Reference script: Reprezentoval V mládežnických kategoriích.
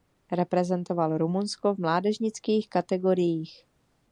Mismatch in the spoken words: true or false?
true